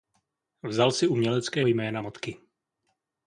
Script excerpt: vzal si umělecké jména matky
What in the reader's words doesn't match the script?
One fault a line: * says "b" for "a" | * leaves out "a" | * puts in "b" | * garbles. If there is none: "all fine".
all fine